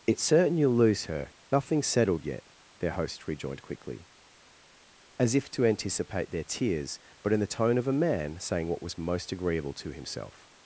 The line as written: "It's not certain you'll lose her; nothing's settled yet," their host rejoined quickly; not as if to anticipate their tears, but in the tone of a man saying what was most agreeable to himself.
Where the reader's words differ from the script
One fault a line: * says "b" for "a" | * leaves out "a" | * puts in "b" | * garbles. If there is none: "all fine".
* leaves out "not"
* leaves out "not"